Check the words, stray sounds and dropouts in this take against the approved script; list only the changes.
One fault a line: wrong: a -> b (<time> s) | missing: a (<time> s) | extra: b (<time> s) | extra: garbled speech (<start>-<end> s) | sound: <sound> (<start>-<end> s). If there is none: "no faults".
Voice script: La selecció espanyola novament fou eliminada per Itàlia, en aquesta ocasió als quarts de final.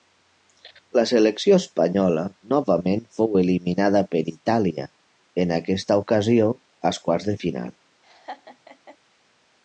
sound: laugh (8.0-9.0 s)